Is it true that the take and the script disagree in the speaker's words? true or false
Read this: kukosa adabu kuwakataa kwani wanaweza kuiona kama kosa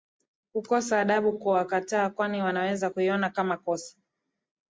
false